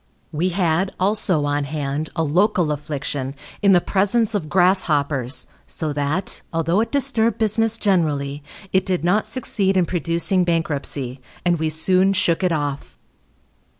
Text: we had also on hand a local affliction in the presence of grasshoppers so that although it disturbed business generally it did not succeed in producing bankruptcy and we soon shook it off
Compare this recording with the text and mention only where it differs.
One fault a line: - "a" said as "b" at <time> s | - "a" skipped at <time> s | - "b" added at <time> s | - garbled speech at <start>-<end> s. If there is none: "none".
none